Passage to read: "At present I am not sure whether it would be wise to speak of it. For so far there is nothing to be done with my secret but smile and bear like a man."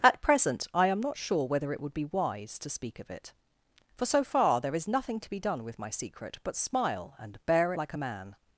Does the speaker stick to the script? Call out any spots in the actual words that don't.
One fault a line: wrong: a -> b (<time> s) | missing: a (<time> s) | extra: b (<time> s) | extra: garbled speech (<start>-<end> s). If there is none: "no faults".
no faults